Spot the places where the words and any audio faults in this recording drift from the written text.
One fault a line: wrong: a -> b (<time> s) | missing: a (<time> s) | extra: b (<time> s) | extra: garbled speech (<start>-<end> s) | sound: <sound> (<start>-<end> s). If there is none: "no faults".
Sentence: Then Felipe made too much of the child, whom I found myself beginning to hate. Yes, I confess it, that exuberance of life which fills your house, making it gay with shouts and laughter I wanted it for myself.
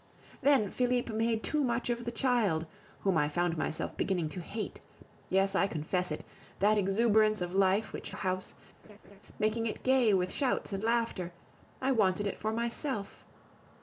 missing: fills your (8.1 s)
sound: laugh (8.8-9.2 s)